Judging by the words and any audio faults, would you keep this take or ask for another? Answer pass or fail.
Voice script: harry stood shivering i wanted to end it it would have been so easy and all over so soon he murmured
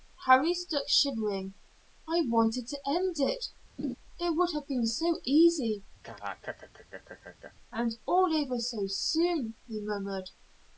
fail